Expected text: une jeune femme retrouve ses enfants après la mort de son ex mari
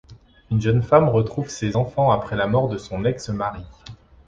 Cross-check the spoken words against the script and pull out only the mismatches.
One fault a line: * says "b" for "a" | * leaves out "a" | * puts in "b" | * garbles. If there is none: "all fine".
all fine